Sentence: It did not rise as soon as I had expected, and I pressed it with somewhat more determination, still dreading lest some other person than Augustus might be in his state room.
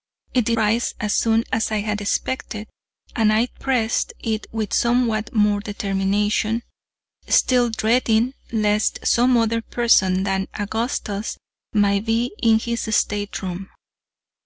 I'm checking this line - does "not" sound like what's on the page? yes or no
no